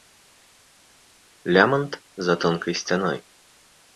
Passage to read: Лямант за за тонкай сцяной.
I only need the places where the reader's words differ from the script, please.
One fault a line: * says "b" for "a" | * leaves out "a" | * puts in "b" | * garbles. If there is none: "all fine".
* leaves out "за"